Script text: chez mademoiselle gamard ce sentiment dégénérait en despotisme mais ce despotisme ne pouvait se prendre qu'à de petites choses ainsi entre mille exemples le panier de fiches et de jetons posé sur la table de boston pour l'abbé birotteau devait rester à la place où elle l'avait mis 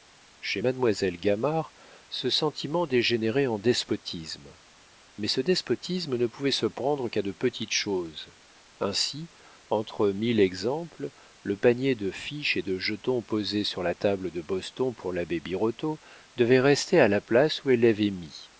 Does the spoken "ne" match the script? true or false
true